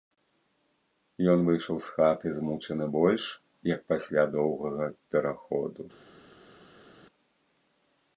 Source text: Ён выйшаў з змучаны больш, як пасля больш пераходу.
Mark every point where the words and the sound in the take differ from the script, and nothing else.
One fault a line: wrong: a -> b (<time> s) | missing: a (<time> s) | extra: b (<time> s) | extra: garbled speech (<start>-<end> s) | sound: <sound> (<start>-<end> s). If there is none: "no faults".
extra: хаты (2.0 s)
wrong: больш -> доўгага (4.4 s)